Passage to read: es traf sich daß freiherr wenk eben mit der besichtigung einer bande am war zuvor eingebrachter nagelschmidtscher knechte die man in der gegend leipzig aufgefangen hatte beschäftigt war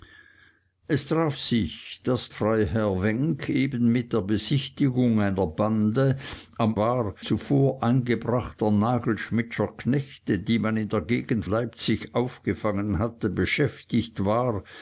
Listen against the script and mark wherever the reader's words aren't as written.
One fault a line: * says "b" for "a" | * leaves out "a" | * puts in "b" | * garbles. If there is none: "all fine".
all fine